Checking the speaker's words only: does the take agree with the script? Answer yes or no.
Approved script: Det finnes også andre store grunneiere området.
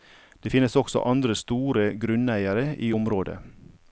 no